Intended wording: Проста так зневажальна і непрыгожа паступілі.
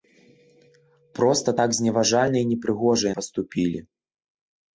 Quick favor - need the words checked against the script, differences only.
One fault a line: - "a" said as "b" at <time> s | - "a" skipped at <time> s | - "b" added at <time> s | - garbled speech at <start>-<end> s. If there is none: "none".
none